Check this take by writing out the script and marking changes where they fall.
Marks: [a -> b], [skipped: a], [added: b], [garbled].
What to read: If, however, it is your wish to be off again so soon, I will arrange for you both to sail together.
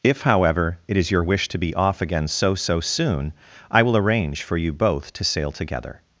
If, however, it is your wish to be off again so [added: so] soon, I will arrange for you both to sail together.